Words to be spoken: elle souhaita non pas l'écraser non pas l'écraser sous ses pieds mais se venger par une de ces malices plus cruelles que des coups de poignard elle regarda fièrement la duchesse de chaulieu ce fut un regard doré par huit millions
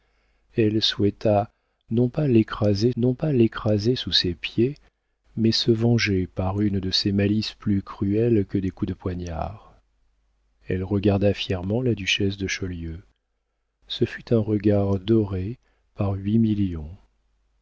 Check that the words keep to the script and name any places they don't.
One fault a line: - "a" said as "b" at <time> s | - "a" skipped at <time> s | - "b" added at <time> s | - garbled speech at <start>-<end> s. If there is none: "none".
none